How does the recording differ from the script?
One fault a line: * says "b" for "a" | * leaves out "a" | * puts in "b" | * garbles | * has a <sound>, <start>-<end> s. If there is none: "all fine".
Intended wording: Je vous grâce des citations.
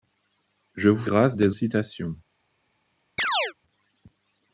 * has a chirp, 3.2-3.5 s